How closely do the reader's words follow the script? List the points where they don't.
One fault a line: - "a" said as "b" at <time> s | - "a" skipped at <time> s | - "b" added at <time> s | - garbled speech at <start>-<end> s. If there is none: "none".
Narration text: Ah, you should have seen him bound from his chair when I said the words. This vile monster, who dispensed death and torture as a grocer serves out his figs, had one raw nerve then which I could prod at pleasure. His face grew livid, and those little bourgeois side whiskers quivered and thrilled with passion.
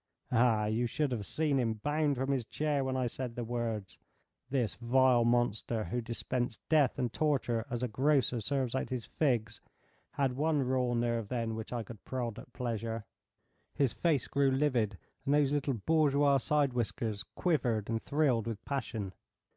none